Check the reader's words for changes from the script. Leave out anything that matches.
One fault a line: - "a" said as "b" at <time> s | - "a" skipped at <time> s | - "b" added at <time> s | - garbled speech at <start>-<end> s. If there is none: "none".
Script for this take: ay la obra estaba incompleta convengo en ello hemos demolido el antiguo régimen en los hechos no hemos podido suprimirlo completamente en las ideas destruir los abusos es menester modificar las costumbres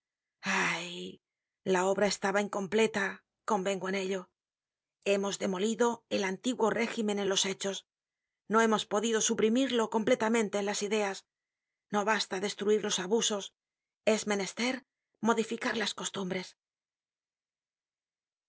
- "no basta" added at 11.9 s